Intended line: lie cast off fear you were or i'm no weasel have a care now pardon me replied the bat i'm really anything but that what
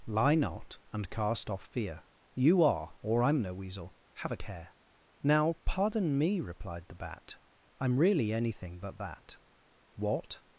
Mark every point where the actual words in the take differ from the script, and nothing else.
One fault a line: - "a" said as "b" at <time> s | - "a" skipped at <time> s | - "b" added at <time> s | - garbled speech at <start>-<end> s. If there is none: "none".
- "not and" added at 0.3 s
- "were" said as "are" at 2.6 s